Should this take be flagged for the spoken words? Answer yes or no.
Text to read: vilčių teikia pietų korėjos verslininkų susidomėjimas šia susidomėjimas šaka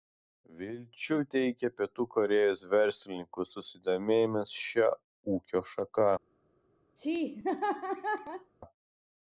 yes